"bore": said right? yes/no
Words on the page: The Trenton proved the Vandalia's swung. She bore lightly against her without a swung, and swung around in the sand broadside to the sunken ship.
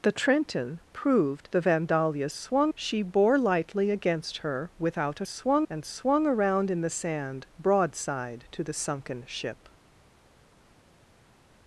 yes